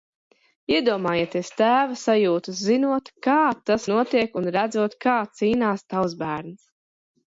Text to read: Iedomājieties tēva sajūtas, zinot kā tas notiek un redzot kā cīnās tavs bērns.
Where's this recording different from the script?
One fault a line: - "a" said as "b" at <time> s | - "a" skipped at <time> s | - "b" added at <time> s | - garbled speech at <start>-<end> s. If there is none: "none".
none